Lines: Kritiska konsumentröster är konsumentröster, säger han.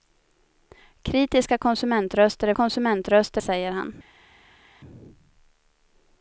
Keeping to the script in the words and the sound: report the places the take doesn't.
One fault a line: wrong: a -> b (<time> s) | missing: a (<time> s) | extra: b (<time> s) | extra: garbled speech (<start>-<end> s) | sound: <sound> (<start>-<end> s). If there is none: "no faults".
no faults